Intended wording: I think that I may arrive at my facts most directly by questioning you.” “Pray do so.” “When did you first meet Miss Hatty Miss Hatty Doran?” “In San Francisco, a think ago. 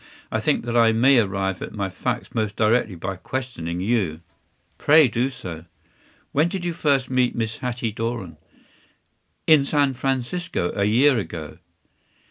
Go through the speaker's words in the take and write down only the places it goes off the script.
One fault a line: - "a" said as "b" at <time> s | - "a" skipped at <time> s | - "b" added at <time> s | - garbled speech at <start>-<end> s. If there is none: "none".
- "Miss Hatty" skipped at 7.9 s
- "think" said as "year" at 10.8 s